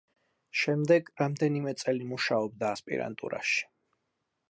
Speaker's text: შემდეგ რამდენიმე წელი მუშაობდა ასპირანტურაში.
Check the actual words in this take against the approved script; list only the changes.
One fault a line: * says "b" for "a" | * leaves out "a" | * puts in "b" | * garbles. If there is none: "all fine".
all fine